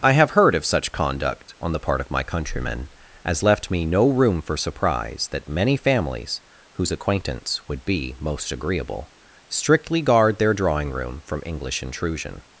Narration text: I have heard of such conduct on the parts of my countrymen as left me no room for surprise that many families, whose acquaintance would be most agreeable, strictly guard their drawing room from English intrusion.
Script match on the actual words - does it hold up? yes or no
no